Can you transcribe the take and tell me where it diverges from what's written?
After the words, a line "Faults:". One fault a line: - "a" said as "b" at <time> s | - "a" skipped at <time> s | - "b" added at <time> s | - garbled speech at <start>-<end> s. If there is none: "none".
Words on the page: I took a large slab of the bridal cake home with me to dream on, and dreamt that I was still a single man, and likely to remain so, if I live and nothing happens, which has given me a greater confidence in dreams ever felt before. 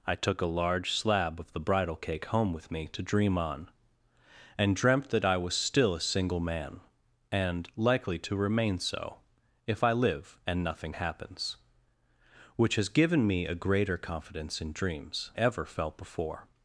I took a large slab of the bridal cake home with me to dream on, and dreamt that I was still a single man, and likely to remain so, if I live and nothing happens, which has given me a greater confidence in dreams ever felt before.
Faults:
none